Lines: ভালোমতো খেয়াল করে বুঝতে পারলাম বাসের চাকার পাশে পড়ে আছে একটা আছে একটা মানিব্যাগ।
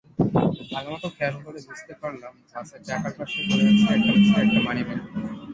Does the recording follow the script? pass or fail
pass